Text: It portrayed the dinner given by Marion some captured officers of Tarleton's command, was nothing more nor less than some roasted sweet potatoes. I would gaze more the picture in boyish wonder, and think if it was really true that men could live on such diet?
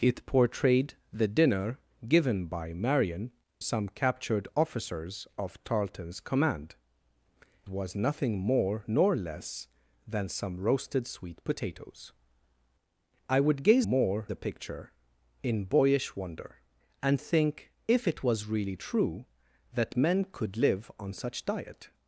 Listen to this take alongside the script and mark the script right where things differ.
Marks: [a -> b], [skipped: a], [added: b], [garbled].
It portrayed the dinner given by Marion some captured officers of Tarleton's command, was nothing more nor less than some roasted sweet potatoes. I would gaze more the picture in boyish wonder, and think if it was really true that men could live on such diet?